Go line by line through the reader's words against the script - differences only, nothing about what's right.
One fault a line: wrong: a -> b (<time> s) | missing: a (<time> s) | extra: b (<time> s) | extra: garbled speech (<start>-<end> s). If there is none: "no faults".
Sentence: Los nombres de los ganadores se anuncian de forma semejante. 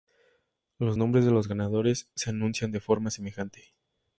no faults